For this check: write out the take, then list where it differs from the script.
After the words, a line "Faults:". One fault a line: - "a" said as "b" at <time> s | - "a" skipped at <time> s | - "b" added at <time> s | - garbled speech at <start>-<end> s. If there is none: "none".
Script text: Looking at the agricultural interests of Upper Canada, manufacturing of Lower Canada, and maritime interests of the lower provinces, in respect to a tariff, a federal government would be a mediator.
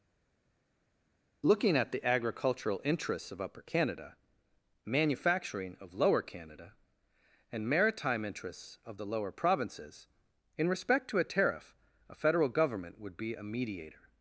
Looking at the agricultural interests of Upper Canada, manufacturing of Lower Canada, and maritime interests of the lower provinces, in respect to a tariff, a federal government would be a mediator.
Faults:
none